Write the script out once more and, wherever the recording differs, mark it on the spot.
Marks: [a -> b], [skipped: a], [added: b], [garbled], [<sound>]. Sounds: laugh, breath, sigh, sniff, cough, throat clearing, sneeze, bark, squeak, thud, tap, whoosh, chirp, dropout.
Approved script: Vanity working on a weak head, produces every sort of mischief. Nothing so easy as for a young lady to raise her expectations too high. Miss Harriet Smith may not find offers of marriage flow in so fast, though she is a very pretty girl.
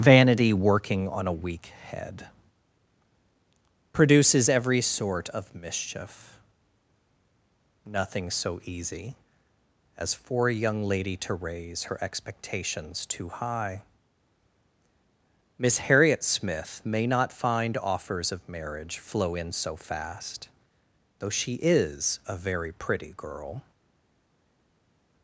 Vanity working on a weak head, produces every sort of mischief. Nothing so easy as for a young lady to raise her expectations too high. Miss Harriet Smith may not find offers of marriage flow in so fast, though she is a very pretty girl.